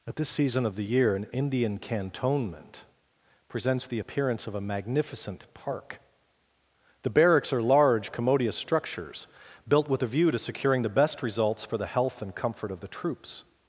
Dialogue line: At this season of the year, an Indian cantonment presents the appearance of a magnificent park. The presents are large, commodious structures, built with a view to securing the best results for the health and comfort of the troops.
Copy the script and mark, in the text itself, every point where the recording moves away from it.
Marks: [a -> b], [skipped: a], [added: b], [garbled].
At this season of the year, an Indian cantonment presents the appearance of a magnificent park. The [presents -> barracks] are large, commodious structures, built with a view to securing the best results for the health and comfort of the troops.